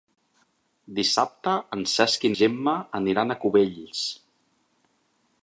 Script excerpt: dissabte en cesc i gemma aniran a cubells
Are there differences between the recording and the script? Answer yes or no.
no